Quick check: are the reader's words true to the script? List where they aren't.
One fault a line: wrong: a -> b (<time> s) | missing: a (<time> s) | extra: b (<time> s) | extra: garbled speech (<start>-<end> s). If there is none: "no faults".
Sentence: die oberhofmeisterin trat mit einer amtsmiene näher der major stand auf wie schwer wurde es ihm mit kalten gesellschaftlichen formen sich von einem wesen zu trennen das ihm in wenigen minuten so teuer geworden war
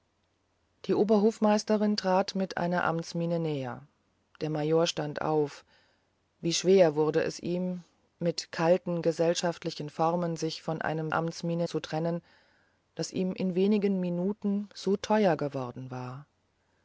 wrong: wesen -> amtsmiene (11.1 s)